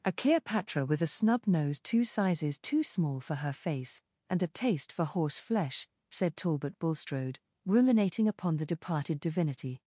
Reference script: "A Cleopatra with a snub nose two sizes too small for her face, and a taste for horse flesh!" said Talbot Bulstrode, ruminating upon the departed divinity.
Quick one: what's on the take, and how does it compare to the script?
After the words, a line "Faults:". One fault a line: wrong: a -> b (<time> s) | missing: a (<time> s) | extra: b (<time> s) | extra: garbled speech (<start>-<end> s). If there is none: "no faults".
"A Cleopatra with a snub nose two sizes too small for her face, and a taste for horse flesh!" said Talbot Bulstrode, ruminating upon the departed divinity.
Faults:
no faults